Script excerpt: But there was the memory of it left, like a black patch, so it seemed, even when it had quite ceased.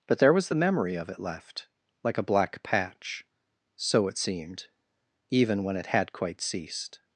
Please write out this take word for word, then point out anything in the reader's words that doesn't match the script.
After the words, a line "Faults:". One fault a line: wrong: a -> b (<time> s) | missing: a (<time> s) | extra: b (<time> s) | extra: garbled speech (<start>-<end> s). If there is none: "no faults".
But there was the memory of it left, like a black patch, so it seemed, even when it had quite ceased.
Faults:
no faults